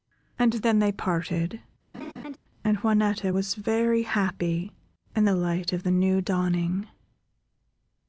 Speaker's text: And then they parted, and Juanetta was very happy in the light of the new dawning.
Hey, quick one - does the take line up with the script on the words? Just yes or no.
yes